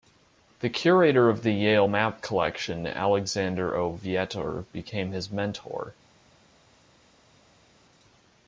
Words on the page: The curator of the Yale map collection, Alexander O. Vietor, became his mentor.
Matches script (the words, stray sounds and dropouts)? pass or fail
pass